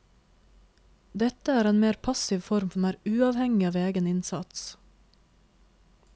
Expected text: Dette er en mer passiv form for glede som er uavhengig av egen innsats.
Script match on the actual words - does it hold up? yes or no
no